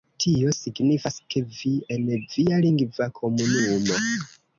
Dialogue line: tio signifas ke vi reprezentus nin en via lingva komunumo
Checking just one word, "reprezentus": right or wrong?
wrong